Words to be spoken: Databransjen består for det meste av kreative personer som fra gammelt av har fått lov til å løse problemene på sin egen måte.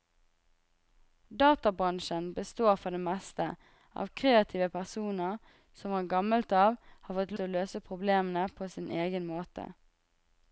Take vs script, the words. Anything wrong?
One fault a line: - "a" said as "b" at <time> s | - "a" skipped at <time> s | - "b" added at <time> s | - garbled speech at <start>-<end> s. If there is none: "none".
- "lov" skipped at 7.4 s